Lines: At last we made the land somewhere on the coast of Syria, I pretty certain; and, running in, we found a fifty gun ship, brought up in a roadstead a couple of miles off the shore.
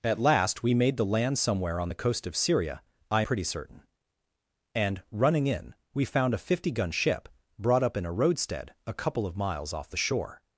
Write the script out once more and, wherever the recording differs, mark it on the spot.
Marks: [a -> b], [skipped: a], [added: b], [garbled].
At last we made the land somewhere on the coast of Syria, I pretty certain; and, running in, we found a fifty gun ship, brought up in a roadstead a couple of miles off the shore.